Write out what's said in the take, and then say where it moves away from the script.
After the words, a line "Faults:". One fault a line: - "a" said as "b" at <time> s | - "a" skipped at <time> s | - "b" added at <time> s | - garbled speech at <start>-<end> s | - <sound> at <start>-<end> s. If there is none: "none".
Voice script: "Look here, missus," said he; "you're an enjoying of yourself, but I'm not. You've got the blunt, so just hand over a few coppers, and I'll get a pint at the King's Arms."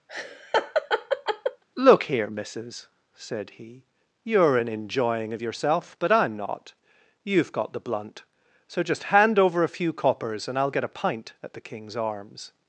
"Look here, missus," said he; "you're an enjoying of yourself, but I'm not. You've got the blunt, so just hand over a few coppers, and I'll get a pint at the King's Arms."
Faults:
- laugh at 0.1-1.6 s